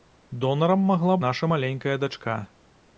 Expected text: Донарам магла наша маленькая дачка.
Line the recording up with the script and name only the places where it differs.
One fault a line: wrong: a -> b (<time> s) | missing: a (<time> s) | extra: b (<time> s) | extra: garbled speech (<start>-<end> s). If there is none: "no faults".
no faults